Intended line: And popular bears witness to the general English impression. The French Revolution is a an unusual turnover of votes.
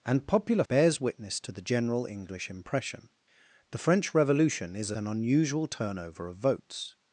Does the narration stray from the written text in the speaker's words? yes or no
no